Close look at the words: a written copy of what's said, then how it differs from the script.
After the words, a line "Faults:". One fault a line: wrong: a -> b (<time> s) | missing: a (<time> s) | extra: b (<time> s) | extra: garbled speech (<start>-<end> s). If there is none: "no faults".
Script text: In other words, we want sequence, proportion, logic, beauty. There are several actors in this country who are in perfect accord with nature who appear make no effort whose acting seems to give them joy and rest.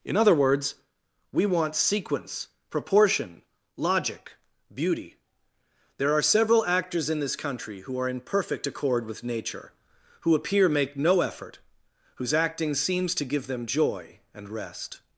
In other words, we want sequence, proportion, logic, beauty. There are several actors in this country who are in perfect accord with nature who appear make no effort whose acting seems to give them joy and rest.
Faults:
no faults